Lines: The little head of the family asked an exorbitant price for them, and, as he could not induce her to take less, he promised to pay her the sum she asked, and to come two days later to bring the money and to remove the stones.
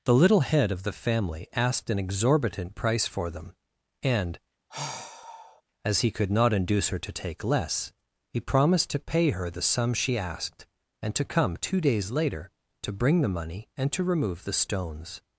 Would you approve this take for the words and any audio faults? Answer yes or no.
no